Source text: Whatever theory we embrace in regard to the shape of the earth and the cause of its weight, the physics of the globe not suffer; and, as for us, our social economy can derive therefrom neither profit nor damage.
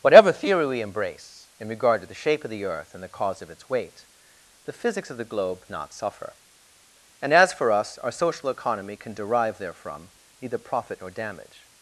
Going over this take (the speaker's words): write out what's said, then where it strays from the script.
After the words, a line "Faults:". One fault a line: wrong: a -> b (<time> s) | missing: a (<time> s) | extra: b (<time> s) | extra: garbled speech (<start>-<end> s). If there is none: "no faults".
Whatever theory we embrace in regard to the shape of the earth and the cause of its weight, the physics of the globe not suffer; and, as for us, our social economy can derive therefrom neither profit nor damage.
Faults:
no faults